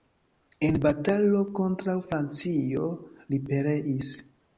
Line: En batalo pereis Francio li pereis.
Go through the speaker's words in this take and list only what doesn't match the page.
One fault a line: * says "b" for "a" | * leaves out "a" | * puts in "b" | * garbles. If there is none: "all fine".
* says "kontraŭ" for "pereis"